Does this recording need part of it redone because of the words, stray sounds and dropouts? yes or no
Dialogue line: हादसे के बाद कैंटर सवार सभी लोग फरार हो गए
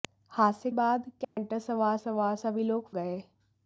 yes